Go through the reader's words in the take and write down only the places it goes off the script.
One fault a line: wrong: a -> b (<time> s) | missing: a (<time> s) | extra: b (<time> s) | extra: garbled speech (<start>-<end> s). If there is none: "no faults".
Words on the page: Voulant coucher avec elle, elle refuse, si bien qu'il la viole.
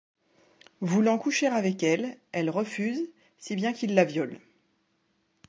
no faults